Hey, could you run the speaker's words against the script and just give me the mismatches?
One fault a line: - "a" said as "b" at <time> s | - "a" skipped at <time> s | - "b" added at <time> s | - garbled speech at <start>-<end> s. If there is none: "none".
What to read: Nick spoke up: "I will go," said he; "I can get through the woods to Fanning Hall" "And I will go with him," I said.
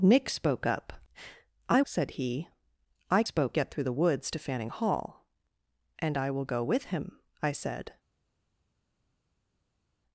- "will go" skipped at 1.8 s
- "can" said as "spoke" at 3.2 s